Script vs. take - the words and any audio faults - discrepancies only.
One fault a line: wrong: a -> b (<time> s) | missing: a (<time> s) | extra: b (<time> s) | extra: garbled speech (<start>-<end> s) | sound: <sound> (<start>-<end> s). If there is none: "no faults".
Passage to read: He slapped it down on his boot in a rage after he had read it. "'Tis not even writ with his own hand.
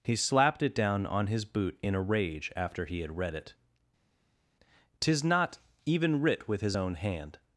no faults